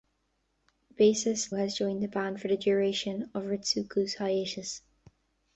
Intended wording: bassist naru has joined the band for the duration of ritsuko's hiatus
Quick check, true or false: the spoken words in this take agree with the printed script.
false